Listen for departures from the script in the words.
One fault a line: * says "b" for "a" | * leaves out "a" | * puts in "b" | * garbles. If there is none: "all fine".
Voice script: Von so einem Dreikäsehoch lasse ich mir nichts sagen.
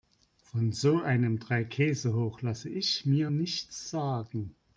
all fine